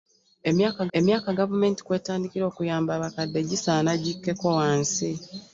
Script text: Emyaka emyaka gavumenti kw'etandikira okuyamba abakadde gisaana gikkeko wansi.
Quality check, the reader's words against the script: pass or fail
pass